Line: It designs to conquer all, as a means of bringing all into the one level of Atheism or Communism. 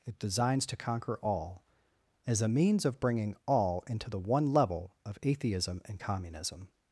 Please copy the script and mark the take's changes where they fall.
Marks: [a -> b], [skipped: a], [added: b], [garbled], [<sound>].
It designs to conquer all, as a means of bringing all into the one level of Atheism [or -> and] Communism.